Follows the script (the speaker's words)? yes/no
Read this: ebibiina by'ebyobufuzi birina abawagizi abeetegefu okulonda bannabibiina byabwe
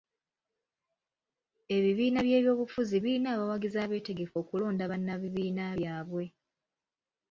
yes